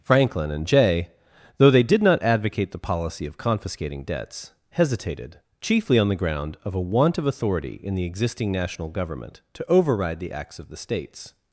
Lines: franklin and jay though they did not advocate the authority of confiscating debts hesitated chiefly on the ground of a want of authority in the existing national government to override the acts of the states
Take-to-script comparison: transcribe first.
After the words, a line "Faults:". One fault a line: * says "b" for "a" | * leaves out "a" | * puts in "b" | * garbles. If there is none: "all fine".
franklin and jay though they did not advocate the policy of confiscating debts hesitated chiefly on the ground of a want of authority in the existing national government to override the acts of the states
Faults:
* says "policy" for "authority"